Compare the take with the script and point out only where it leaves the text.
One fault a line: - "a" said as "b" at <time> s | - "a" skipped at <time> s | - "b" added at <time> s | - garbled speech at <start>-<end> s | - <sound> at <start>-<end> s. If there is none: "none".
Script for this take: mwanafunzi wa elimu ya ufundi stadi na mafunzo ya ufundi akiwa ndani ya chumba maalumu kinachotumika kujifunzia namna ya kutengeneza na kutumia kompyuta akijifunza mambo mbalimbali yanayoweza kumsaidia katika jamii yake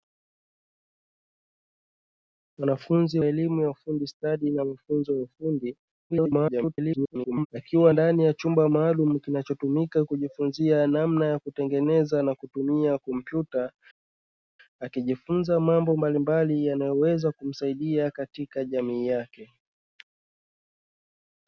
- "wa" skipped at 3.2 s
- garbled speech at 6.1-7.5 s